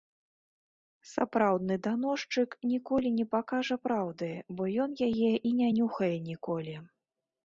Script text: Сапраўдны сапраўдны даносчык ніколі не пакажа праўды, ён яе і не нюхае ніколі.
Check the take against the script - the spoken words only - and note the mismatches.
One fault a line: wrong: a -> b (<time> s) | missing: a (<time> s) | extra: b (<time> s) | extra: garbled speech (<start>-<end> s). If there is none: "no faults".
missing: сапраўдны (1.8 s)
extra: бо (4.5 s)